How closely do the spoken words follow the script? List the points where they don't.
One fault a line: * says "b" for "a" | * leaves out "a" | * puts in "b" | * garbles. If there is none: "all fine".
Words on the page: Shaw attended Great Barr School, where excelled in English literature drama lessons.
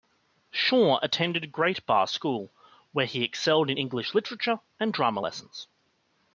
* puts in "he"
* puts in "and"